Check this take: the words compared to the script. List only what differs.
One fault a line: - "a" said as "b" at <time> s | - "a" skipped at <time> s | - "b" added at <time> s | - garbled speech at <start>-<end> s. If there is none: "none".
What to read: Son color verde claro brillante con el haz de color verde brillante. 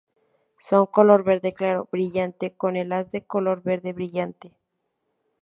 none